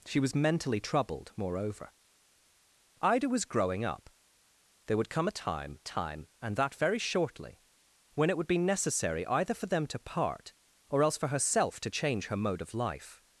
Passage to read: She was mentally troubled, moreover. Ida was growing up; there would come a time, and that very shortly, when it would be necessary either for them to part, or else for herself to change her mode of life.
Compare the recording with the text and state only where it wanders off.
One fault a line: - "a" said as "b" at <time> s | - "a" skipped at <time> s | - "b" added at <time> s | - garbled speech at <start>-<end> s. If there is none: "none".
- "time" added at 5.8 s